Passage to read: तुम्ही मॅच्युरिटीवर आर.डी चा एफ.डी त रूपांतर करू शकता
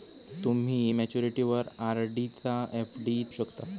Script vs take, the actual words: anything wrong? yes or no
yes